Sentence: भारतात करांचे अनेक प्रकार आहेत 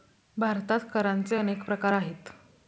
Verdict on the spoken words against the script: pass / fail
pass